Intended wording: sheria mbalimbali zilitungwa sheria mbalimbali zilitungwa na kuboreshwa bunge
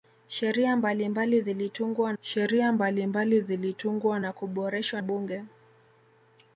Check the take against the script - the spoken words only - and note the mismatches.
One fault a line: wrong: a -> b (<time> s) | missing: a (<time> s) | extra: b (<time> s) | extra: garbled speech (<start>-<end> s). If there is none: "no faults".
no faults